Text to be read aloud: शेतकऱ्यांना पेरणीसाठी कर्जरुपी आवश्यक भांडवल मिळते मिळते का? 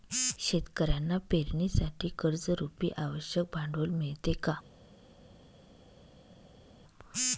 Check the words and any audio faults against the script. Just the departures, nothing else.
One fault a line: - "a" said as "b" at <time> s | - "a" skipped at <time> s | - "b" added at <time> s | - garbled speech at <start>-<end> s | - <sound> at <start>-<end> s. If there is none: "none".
- "मिळते" skipped at 4.3 s